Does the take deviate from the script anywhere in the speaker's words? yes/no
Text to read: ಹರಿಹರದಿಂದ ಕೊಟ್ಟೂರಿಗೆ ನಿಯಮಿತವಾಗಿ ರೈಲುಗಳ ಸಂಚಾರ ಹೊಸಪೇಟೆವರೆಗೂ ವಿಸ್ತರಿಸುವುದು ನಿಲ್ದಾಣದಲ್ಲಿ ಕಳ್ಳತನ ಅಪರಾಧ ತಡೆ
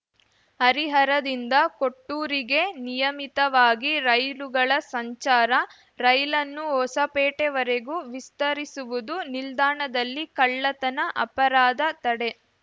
yes